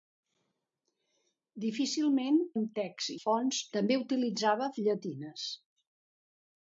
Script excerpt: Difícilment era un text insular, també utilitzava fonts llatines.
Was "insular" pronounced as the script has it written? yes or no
no